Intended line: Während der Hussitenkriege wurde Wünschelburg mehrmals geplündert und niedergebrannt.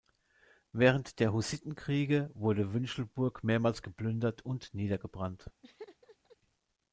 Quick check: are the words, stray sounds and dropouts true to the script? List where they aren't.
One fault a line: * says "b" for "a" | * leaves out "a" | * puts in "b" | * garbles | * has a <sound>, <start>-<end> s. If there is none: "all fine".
* has a laugh, 5.6-6.4 s